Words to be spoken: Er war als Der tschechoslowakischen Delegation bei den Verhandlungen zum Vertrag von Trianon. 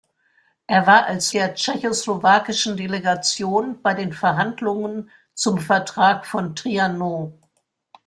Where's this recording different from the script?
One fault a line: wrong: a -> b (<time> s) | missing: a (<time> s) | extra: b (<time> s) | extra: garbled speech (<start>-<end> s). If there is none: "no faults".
no faults